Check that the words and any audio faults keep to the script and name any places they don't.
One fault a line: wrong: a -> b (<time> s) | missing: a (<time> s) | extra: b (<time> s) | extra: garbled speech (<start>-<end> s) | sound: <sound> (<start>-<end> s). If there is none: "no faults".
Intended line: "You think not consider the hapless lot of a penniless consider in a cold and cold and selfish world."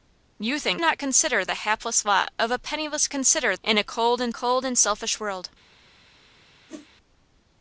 sound: whoosh (6.7-6.9 s)